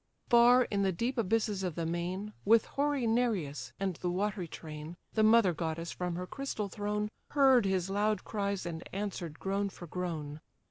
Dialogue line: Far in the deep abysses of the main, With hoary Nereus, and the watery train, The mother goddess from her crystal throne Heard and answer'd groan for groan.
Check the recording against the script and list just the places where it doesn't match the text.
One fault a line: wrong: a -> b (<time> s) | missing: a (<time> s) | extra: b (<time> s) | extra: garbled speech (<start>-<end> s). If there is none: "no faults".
extra: his loud cries (7.7 s)